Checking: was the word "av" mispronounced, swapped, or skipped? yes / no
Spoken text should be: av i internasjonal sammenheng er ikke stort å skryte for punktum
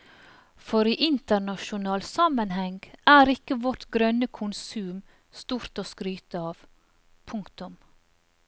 yes